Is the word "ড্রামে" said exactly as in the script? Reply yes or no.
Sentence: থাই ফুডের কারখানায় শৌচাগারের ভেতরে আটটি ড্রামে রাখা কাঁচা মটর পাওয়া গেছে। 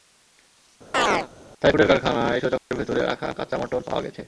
no